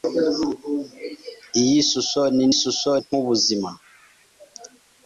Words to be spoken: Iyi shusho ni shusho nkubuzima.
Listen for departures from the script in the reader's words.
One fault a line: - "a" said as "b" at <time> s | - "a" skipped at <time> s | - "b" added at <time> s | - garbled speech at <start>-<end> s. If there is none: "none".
none